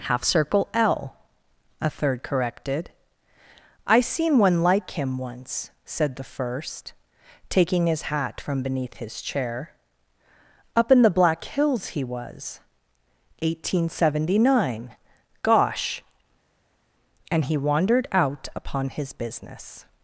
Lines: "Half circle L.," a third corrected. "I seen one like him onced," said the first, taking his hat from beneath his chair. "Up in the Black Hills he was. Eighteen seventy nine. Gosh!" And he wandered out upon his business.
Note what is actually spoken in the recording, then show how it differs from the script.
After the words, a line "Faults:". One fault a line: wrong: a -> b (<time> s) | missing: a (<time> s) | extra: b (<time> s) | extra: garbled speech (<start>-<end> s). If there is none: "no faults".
"Half circle L.," a third corrected. "I seen one like him once," said the first, taking his hat from beneath his chair. "Up in the Black Hills he was. Eighteen seventy nine. Gosh!" And he wandered out upon his business.
Faults:
wrong: onced -> once (5.2 s)